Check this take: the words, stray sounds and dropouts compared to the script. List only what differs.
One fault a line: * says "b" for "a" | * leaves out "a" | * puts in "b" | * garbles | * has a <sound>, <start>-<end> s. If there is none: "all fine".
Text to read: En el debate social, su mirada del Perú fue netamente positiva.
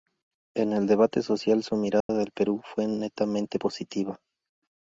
* has a dropout, 2.0-2.1 s